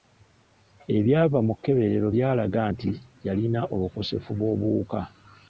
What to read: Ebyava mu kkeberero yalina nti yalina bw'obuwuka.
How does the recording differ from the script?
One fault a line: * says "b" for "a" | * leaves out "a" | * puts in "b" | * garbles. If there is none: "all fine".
* says "byalaga" for "yalina"
* puts in "obukosefu"